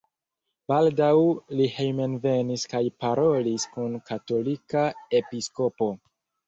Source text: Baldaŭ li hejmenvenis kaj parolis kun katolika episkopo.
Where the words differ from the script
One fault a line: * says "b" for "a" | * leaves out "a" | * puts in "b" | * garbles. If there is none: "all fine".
all fine